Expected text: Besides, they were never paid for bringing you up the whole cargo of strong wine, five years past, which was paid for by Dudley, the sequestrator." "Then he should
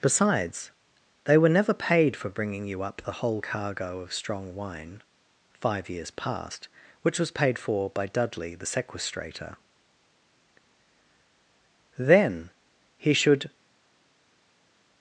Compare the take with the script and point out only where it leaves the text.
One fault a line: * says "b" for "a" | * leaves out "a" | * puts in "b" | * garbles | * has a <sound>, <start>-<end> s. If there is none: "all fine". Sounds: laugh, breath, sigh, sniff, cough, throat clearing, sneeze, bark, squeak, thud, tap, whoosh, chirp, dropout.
all fine